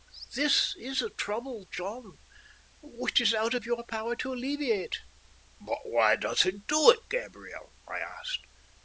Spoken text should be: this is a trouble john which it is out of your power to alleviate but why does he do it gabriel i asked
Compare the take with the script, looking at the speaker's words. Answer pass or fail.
pass